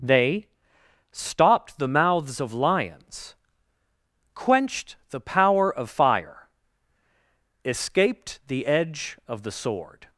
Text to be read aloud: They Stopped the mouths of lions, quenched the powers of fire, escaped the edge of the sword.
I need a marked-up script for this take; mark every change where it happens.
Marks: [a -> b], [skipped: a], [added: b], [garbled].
They Stopped the mouths of lions, quenched the [powers -> power] of fire, escaped the edge of the sword.